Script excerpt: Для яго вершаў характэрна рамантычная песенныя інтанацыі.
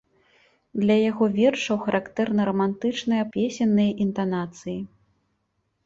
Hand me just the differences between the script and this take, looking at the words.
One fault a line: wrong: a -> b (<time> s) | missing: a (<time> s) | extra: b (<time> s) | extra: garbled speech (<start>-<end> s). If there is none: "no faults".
no faults